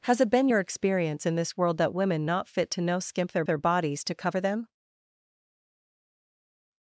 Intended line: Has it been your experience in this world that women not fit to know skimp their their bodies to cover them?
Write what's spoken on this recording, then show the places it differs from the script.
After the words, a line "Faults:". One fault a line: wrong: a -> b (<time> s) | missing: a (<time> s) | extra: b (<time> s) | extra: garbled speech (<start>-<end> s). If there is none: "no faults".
Has it been your experience in this world that women not fit to know skimp their their bodies to cover them?
Faults:
no faults